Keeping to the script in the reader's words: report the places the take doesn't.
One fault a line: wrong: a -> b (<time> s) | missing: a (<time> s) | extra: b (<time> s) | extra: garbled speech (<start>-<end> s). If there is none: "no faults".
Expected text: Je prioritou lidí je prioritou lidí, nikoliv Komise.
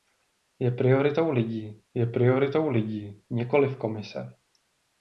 no faults